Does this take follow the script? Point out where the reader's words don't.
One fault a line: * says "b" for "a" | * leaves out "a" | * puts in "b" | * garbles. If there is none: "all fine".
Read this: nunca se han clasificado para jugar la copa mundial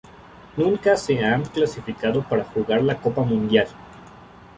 all fine